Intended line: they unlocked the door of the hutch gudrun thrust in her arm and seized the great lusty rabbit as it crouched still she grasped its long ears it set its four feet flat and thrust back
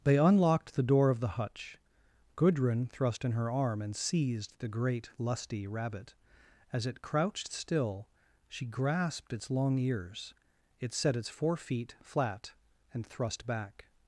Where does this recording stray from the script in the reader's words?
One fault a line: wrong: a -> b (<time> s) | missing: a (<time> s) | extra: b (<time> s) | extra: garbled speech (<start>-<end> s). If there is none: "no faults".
no faults